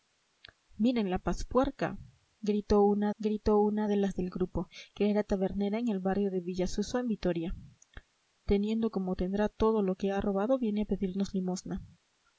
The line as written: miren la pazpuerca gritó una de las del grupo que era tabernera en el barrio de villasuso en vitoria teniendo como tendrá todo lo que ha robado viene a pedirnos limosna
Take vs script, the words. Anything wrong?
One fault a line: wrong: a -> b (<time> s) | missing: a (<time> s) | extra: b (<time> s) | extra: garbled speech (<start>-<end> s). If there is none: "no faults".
extra: gritó una (3.2 s)